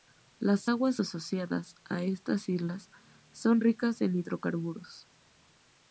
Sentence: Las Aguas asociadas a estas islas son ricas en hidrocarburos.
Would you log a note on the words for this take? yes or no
no